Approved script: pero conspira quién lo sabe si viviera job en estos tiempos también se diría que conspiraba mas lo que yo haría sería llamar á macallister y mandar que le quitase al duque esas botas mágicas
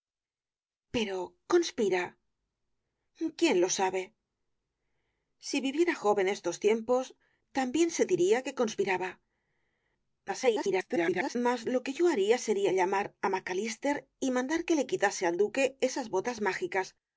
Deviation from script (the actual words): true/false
true